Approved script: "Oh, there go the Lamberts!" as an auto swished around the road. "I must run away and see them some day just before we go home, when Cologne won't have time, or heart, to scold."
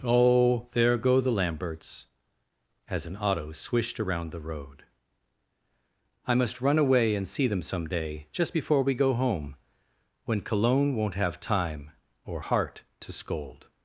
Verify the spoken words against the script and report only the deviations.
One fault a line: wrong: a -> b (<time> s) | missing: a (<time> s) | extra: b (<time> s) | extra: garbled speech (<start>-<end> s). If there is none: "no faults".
no faults